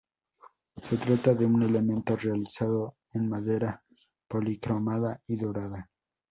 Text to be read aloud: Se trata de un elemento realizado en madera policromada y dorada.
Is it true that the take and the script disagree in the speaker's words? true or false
false